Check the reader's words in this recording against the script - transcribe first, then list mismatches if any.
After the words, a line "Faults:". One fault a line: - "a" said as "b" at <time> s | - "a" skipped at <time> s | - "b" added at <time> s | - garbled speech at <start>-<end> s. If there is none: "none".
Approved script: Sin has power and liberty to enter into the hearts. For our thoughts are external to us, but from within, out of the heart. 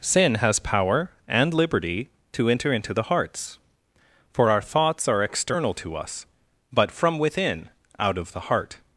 Sin has power and liberty to enter into the hearts. For our thoughts are external to us, but from within, out of the heart.
Faults:
none